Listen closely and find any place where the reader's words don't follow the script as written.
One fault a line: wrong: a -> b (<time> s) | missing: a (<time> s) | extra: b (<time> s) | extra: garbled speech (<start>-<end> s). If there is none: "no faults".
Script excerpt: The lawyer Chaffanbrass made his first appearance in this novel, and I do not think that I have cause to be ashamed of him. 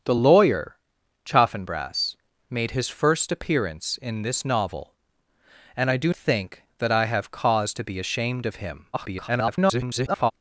missing: not (6.1 s)
extra: garbled speech (8.9-10.3 s)